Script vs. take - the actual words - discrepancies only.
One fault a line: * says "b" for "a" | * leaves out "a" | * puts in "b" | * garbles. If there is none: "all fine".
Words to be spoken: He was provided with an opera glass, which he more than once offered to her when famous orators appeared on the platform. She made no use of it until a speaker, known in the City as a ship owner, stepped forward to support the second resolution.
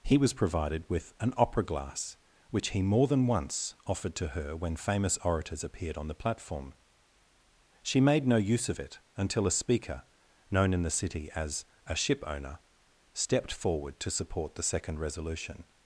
all fine